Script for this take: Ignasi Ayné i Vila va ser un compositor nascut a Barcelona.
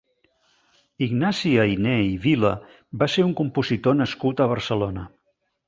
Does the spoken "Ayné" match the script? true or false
true